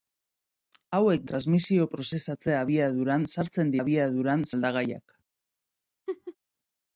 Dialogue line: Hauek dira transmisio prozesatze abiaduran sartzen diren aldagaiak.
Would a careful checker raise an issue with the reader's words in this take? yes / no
yes